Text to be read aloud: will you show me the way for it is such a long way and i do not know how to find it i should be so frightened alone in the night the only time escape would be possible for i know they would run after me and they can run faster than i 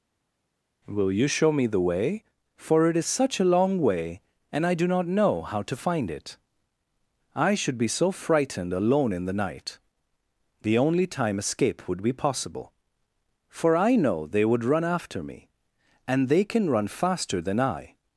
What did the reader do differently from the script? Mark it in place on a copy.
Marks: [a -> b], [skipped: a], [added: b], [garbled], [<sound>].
will you show me the way for it is such a long way and i do not know how to find it i should be so frightened alone in the night the only time escape would be possible for i know they would run after me and they can run faster than i